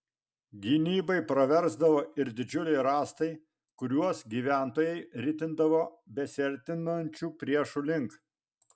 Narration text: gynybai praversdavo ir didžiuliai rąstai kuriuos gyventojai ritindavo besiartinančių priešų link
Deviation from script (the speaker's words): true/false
false